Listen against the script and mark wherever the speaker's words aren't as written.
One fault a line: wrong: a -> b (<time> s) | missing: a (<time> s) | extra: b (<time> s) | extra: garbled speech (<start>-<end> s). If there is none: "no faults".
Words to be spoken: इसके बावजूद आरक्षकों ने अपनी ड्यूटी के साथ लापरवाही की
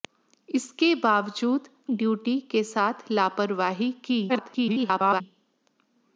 missing: आरक्षकों ने अपनी (1.7 s)
extra: garbled speech (4.3-5.2 s)